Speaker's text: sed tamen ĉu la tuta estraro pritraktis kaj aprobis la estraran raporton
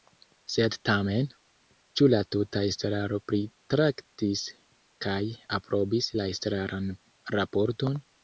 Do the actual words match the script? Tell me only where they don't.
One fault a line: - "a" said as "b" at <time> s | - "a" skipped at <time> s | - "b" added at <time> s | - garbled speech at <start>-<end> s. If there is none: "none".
none